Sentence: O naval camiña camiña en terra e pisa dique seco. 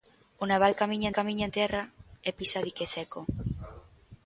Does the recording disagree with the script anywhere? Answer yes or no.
no